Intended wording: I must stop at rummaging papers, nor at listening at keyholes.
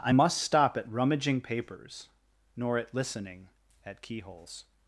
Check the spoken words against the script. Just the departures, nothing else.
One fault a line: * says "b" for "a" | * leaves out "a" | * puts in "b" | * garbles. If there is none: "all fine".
all fine